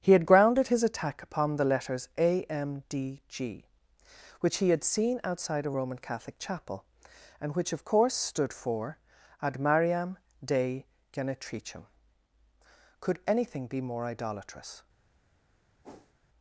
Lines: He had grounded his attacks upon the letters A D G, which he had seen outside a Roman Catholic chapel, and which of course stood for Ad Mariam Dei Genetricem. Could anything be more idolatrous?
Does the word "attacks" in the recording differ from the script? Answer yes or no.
yes